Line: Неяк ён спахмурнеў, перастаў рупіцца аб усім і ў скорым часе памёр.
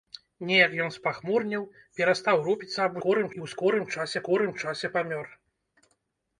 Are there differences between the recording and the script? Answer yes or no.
yes